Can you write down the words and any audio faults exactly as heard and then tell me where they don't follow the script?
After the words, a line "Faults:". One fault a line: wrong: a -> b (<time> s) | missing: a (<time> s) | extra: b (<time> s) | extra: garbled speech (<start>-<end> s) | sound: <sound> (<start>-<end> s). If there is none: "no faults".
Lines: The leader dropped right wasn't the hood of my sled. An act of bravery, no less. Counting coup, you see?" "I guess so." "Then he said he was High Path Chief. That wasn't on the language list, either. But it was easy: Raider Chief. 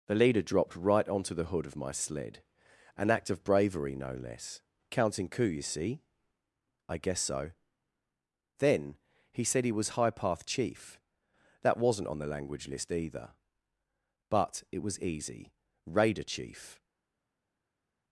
The leader dropped right onto the hood of my sled. An act of bravery, no less. Counting coup, you see?" "I guess so." "Then he said he was High Path Chief. That wasn't on the language list, either. But it was easy: Raider Chief.
Faults:
wrong: wasn't -> onto (1.1 s)